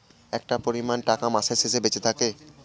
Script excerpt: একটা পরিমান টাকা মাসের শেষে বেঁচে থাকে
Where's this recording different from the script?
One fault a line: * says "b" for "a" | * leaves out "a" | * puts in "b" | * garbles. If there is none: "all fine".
all fine